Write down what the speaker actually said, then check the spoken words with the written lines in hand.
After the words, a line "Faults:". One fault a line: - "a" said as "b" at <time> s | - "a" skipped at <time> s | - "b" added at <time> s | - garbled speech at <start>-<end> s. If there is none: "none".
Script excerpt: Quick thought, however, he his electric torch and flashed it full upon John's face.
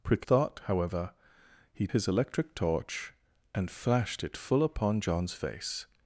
Quick thought, however, he his electric torch and flashed it full upon John's face.
Faults:
none